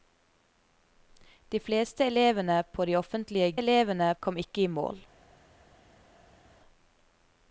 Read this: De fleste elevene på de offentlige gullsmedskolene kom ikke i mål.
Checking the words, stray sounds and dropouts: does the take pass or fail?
fail